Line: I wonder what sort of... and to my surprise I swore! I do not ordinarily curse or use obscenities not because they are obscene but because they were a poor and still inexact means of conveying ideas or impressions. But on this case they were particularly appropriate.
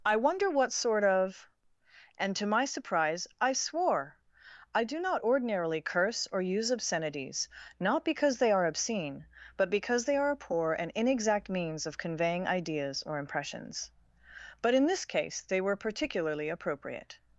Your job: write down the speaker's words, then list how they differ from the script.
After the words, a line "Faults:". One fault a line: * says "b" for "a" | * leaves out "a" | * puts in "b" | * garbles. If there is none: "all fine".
I wonder what sort of... and to my surprise I swore! I do not ordinarily curse or use obscenities not because they are obscene but because they are a poor and inexact means of conveying ideas or impressions. But in this case they were particularly appropriate.
Faults:
* says "are" for "were"
* leaves out "still"
* says "in" for "on"